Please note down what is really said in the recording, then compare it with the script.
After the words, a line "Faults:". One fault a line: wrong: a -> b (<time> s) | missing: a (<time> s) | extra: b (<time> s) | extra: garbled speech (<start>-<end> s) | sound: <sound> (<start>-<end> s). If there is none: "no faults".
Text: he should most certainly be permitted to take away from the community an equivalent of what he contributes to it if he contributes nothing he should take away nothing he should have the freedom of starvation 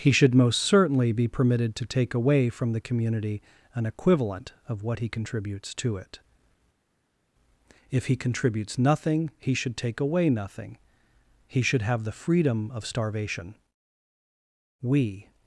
he should most certainly be permitted to take away from the community an equivalent of what he contributes to it if he contributes nothing he should take away nothing he should have the freedom of starvation we
Faults:
extra: we (14.8 s)